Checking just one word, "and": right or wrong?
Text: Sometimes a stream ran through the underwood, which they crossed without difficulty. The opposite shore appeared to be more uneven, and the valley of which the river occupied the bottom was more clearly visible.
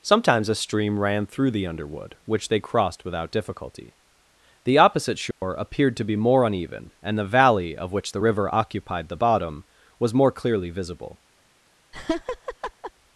right